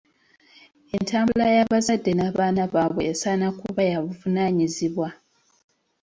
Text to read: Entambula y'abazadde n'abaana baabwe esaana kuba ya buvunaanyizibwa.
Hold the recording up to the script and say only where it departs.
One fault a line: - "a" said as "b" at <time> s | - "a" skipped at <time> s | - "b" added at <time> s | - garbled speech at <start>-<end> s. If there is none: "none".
none